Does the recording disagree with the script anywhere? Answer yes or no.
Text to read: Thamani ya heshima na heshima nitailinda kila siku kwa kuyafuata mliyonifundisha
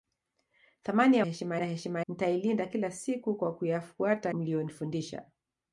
no